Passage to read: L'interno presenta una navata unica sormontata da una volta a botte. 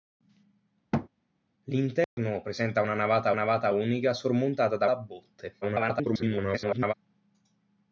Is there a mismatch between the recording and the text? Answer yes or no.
yes